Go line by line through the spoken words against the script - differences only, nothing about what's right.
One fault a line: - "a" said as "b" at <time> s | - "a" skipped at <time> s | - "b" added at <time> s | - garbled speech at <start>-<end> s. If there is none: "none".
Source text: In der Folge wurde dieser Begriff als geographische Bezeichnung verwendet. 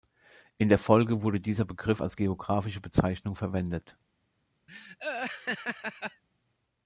none